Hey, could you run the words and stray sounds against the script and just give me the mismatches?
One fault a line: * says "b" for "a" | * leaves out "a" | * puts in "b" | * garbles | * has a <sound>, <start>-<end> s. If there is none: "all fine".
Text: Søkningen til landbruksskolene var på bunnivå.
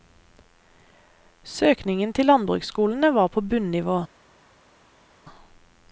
all fine